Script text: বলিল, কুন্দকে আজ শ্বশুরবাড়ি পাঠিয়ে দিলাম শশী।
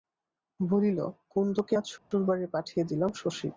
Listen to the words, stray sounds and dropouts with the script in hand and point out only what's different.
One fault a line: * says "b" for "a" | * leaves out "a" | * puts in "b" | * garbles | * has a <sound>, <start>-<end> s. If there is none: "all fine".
* has a dropout, 2.0-2.1 s